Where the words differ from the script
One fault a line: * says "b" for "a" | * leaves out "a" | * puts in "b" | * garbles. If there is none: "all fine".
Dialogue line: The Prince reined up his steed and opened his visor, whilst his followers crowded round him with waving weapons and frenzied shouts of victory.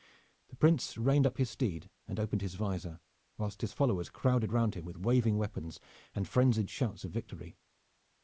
all fine